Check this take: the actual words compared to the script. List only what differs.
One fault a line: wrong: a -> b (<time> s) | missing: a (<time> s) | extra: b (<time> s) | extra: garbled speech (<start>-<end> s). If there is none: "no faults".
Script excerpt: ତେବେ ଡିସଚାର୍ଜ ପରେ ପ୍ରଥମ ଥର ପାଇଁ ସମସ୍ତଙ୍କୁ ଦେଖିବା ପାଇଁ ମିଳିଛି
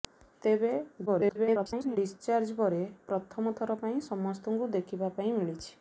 extra: garbled speech (1.1-2.0 s)